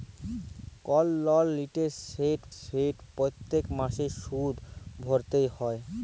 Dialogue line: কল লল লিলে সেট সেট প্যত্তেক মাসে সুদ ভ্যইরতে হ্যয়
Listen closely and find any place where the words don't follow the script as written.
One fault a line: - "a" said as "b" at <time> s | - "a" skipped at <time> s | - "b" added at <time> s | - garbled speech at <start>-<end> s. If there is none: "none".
none